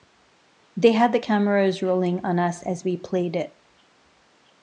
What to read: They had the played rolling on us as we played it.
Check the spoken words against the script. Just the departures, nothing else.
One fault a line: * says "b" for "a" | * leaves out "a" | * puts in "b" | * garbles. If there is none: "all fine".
* says "cameras" for "played"